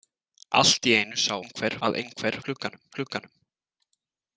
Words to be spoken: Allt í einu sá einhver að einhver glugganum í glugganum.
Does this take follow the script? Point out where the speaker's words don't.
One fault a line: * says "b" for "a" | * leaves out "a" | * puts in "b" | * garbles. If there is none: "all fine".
all fine